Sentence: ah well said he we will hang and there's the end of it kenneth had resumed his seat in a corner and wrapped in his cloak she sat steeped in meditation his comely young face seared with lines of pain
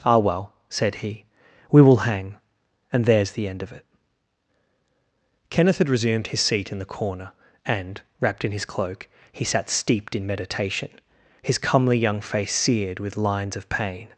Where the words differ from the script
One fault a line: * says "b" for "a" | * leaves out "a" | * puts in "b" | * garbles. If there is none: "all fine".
* says "the" for "a"
* says "he" for "she"